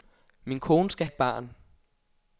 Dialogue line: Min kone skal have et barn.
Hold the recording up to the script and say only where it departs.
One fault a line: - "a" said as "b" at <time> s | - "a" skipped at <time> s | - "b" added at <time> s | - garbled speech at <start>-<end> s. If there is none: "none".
- "have" skipped at 1.1 s